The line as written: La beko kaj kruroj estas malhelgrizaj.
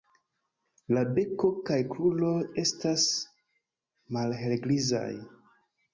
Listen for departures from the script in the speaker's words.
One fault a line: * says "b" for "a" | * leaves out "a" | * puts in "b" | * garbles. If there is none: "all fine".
all fine